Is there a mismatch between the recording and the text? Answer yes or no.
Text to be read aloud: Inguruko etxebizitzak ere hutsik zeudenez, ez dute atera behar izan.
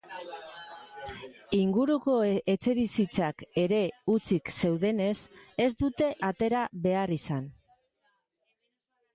no